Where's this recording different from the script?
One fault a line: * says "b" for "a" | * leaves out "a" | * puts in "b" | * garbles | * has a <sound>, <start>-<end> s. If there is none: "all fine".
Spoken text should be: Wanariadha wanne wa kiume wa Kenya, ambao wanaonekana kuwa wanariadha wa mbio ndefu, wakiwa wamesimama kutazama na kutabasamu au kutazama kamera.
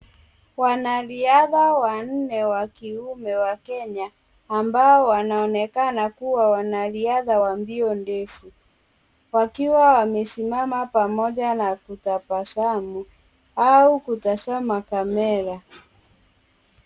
* says "pamoja" for "kutazama"